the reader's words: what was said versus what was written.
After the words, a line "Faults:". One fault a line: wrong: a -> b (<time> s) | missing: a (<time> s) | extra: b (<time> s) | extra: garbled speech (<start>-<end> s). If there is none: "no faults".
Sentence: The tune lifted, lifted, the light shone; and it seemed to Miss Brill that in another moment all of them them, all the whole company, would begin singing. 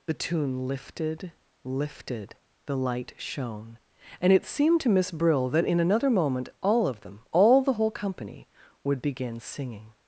The tune lifted, lifted, the light shone; and it seemed to Miss Brill that in another moment all of them, all the whole company, would begin singing.
Faults:
missing: them (7.2 s)